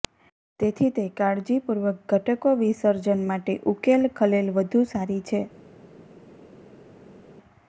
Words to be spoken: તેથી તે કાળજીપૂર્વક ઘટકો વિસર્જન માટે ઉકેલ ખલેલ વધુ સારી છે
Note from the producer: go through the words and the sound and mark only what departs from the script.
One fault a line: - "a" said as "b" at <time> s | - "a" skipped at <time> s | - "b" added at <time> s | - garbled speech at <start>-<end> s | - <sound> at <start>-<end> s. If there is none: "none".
none